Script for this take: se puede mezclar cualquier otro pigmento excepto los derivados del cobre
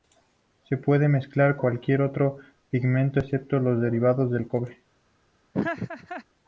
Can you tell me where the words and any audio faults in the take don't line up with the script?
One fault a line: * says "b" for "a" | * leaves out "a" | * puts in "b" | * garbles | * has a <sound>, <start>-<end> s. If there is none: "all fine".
* has a laugh, 5.5-6.2 s